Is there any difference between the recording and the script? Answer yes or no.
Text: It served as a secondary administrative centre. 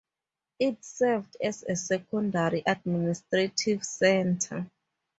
no